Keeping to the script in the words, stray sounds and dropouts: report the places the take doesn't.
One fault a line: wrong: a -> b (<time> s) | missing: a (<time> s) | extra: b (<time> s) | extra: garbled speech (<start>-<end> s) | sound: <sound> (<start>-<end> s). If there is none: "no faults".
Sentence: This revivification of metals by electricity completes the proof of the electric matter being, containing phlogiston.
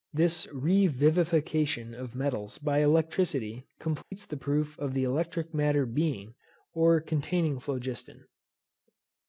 sound: dropout (4.0-4.1 s)
extra: or (6.7 s)